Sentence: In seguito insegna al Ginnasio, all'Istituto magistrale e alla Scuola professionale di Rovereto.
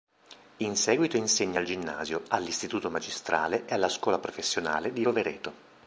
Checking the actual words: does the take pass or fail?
pass